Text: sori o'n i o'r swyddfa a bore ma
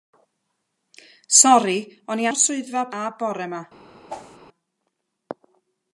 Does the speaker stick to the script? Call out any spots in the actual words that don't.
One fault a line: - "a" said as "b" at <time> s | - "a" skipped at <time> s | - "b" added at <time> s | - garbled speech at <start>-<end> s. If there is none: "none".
none